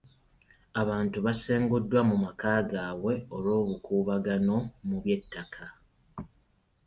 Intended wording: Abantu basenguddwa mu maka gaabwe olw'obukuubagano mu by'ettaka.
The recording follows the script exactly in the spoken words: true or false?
true